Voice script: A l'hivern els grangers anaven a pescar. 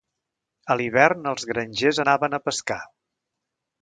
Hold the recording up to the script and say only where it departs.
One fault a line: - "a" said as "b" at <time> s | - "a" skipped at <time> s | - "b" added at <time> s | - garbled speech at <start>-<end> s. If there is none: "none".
none